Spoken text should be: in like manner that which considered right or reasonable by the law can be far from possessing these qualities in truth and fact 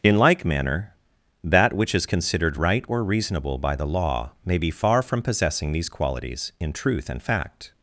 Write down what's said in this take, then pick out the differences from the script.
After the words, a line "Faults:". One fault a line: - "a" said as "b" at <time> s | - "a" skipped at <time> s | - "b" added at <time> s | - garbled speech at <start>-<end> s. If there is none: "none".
in like manner that which is considered right or reasonable by the law may be far from possessing these qualities in truth and fact
Faults:
- "is" added at 1.9 s
- "can" said as "may" at 4.4 s